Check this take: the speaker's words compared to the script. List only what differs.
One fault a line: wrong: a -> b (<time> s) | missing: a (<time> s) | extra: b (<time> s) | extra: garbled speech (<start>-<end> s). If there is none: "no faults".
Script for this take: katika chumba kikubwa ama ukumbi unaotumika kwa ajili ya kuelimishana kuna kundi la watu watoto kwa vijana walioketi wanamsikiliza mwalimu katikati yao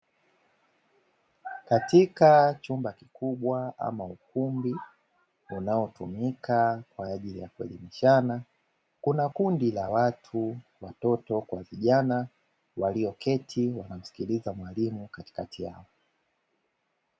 no faults